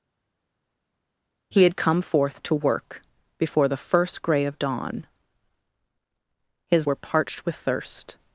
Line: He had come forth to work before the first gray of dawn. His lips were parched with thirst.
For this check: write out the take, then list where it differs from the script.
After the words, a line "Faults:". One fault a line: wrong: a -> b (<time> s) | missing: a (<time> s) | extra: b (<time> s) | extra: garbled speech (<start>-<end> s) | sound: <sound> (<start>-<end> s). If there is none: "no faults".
He had come forth to work before the first gray of dawn. His were parched with thirst.
Faults:
missing: lips (6.9 s)